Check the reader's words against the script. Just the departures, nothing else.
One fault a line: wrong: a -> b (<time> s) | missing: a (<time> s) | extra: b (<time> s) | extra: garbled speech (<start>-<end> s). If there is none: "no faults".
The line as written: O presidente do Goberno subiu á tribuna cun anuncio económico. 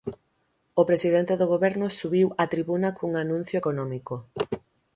no faults